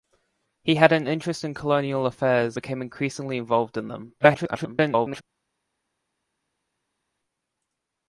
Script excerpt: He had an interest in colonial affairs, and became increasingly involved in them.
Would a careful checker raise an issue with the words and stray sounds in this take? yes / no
yes